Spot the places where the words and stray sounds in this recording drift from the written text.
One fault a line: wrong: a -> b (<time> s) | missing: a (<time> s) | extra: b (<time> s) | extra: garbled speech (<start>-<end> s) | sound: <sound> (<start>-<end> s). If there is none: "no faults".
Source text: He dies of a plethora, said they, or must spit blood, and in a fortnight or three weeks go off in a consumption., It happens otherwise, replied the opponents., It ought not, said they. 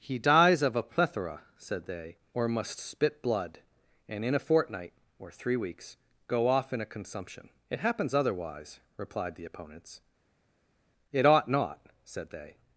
no faults